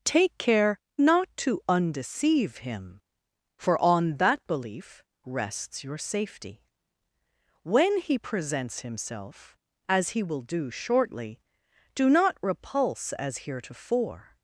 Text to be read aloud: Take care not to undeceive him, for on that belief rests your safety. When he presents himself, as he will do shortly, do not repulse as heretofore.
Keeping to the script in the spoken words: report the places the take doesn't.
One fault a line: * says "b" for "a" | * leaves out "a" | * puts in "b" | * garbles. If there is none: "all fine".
all fine